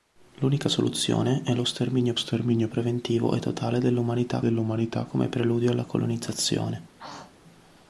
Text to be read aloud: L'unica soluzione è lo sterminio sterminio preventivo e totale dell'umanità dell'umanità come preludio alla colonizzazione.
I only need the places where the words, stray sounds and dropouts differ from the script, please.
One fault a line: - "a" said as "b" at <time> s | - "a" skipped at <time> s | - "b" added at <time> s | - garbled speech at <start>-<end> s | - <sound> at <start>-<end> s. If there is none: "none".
- throat clearing at 6.9-7.4 s